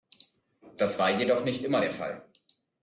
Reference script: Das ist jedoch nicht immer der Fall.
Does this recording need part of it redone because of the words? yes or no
yes